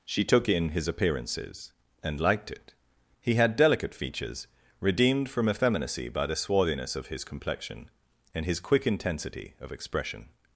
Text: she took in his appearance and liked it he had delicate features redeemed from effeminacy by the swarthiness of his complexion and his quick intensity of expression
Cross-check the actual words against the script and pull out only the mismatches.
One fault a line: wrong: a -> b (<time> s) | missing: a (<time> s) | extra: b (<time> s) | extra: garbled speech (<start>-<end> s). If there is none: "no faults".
wrong: appearance -> appearances (0.9 s)